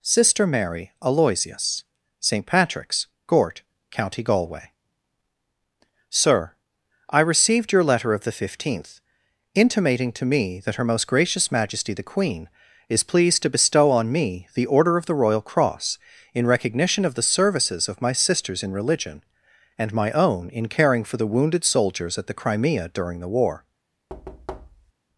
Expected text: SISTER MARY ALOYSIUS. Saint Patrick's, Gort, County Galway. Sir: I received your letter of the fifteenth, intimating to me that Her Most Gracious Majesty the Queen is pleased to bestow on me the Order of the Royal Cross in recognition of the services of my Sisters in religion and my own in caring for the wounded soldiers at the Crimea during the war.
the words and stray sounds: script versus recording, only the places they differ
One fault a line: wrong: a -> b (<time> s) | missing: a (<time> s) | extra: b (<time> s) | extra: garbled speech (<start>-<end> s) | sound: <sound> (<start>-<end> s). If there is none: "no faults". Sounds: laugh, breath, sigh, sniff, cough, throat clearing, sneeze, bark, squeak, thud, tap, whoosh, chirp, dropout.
sound: thud (24.1-24.9 s)